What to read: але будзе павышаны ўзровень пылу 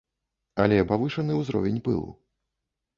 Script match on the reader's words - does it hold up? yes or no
no